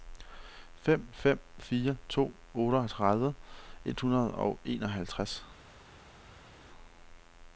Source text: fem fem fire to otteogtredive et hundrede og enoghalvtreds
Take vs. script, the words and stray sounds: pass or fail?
pass